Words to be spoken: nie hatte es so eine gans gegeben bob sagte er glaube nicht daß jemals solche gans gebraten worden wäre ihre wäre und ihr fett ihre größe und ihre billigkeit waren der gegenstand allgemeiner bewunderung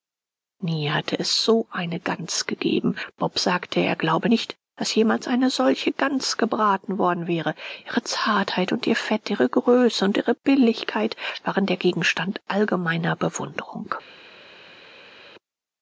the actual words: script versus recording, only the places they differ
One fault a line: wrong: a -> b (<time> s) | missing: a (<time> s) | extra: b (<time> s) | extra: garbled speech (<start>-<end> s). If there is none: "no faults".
extra: eine (5.3 s)
wrong: wäre -> zartheit (8.0 s)